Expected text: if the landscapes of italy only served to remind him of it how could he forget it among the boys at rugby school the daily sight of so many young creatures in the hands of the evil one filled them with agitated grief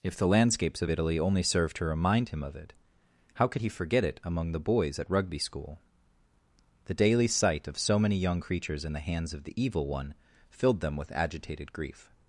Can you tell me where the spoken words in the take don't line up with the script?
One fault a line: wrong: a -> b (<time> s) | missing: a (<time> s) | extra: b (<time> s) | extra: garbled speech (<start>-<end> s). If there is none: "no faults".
no faults